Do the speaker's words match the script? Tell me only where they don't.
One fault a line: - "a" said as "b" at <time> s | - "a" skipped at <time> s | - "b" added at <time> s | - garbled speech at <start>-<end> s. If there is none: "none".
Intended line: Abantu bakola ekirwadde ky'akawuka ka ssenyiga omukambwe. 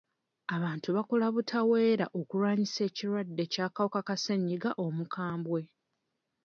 - "butaweera okulwanyisa" added at 1.4 s